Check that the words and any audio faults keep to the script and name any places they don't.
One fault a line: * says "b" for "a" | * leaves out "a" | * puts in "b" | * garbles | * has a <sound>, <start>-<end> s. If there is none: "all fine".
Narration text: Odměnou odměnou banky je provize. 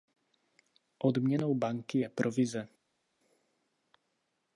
* leaves out "odměnou"